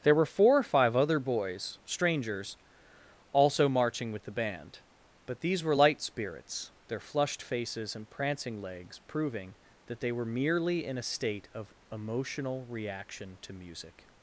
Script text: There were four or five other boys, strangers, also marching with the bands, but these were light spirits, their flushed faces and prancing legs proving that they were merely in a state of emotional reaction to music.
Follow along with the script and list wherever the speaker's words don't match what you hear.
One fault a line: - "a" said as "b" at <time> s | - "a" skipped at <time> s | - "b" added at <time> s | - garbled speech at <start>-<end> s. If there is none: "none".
- "bands" said as "band" at 4.3 s